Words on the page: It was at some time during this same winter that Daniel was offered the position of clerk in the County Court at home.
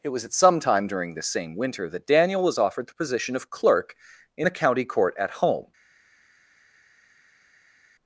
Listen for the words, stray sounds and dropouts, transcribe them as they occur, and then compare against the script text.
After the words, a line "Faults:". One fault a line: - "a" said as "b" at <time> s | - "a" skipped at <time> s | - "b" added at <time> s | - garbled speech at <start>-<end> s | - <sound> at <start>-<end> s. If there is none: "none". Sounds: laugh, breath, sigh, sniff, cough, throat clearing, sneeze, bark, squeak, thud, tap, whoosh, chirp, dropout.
It was at some time during this same winter that Daniel was offered the position of clerk in the County Court at home.
Faults:
none